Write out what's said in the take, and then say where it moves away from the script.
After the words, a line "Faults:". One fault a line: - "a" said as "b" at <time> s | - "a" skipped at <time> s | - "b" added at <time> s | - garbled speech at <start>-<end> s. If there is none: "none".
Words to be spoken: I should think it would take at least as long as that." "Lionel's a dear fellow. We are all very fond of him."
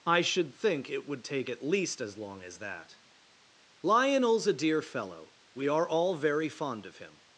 I should think it would take at least as long as that." "Lionel's a dear fellow. We are all very fond of him."
Faults:
none